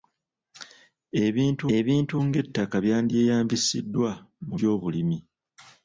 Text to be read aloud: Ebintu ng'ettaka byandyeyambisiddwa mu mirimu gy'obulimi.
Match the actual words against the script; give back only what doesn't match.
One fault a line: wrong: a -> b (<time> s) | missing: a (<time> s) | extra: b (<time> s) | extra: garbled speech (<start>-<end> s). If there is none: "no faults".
extra: ebintu (1.8 s)
missing: mirimu (4.6 s)